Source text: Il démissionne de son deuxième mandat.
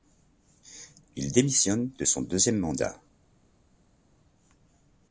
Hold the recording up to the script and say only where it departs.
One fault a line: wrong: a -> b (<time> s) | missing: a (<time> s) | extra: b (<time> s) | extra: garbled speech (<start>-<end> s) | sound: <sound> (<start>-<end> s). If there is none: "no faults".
no faults